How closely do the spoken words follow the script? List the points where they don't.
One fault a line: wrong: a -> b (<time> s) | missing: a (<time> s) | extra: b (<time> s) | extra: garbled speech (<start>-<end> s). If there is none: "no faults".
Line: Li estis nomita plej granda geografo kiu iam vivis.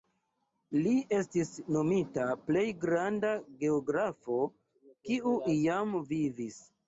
no faults